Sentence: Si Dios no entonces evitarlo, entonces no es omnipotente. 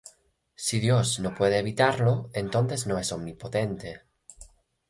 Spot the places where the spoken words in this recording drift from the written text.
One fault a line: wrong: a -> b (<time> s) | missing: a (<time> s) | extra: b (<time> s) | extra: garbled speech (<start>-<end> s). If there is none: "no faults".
wrong: entonces -> puede (1.4 s)